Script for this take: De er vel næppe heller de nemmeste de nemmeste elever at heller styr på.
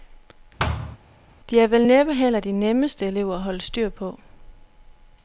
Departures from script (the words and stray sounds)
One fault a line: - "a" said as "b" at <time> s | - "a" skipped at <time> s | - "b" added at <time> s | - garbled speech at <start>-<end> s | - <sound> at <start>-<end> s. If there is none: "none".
- thud at 0.6-1.0 s
- "de nemmeste" skipped at 3.1 s
- "heller" said as "holde" at 3.4 s